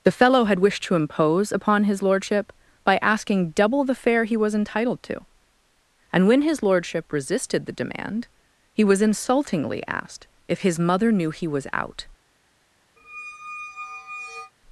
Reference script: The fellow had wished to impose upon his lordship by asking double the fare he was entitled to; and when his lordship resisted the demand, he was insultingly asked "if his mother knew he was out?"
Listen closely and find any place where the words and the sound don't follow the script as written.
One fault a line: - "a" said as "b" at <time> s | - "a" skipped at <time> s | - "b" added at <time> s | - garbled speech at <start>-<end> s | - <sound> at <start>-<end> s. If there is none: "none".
- squeak at 13.0-14.5 s